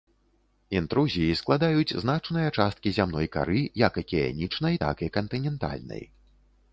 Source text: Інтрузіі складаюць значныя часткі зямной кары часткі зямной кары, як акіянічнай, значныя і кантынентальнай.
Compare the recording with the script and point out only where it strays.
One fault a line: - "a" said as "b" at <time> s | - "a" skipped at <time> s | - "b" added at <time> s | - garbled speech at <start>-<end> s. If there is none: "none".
- "часткі зямной кары" skipped at 3.6 s
- "значныя" said as "так" at 4.8 s